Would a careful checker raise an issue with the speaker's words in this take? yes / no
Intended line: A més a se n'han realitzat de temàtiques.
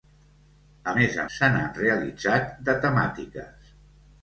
no